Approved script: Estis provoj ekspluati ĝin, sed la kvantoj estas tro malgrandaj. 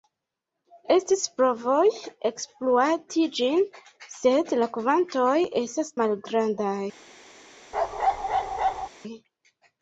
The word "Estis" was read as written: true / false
true